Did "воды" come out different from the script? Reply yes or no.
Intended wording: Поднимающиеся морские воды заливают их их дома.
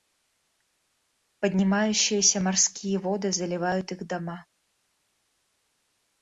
no